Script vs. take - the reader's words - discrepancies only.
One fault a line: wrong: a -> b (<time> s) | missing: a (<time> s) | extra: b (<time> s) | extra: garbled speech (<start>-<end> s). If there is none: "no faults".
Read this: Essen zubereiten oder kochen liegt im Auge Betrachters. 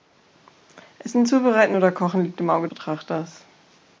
no faults